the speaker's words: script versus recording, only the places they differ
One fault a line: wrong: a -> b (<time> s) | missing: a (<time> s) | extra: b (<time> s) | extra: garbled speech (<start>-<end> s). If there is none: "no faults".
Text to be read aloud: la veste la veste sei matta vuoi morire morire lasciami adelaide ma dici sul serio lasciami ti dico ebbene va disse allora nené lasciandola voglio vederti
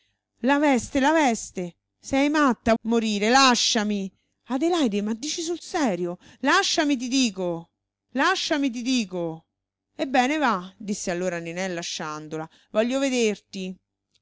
missing: vuoi (2.7 s)
missing: morire (3.3 s)
extra: lasciami ti dico (8.1 s)